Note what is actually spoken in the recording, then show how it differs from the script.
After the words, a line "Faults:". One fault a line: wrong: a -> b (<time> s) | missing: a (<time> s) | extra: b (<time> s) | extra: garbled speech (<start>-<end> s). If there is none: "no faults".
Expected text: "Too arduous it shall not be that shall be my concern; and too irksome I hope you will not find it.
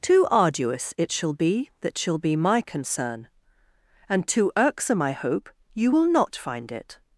"Too arduous it shall be that shall be my concern; and too irksome I hope you will not find it.
Faults:
missing: not (1.3 s)